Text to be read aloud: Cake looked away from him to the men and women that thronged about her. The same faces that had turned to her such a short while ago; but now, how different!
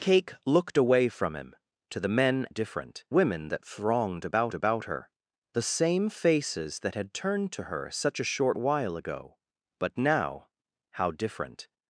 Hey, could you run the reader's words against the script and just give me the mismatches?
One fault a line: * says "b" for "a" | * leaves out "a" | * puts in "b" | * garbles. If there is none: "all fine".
* says "different" for "and"
* puts in "about"